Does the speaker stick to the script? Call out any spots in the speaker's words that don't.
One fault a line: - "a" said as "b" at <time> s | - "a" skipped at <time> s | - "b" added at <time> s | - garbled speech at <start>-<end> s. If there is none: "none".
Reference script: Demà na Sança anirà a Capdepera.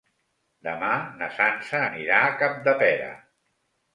none